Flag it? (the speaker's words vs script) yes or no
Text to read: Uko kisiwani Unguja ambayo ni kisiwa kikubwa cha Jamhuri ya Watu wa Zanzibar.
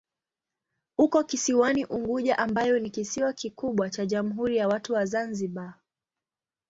no